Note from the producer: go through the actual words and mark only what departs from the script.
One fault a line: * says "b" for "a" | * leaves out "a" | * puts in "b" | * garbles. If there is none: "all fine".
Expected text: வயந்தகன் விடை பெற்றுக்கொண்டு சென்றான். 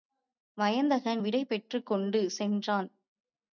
all fine